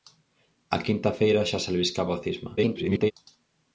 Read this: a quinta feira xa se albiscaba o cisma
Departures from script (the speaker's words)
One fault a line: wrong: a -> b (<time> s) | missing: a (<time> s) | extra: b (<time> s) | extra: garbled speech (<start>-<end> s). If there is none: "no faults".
extra: garbled speech (2.6-3.1 s)